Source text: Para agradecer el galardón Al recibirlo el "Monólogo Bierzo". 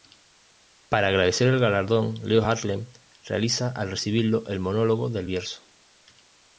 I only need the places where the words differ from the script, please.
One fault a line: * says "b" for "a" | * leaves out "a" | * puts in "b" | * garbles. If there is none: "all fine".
* puts in "Leo Harlem realiza"
* puts in "del"